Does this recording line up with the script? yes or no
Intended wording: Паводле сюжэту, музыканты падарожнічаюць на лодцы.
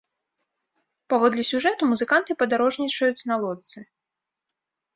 yes